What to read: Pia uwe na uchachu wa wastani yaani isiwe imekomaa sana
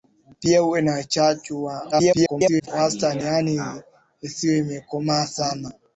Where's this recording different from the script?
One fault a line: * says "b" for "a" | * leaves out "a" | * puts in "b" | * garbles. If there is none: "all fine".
* garbles